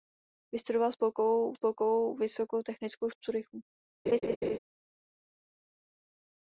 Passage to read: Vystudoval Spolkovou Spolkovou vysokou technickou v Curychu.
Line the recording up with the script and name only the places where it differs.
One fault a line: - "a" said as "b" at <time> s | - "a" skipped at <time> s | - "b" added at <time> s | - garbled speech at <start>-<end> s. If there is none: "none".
none